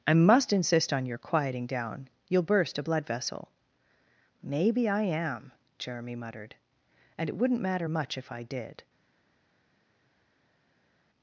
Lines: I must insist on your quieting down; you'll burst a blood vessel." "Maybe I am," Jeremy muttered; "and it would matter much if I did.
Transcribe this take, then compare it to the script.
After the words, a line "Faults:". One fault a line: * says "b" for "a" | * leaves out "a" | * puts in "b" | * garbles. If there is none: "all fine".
I must insist on your quieting down; you'll burst a blood vessel." "Maybe I am," Jeremy muttered; "and it wouldn't matter much if I did.
Faults:
* says "wouldn't" for "would"